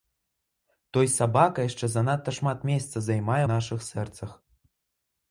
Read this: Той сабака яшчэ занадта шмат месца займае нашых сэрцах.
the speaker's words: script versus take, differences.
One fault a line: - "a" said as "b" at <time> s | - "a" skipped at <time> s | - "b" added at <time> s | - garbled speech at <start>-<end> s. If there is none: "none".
none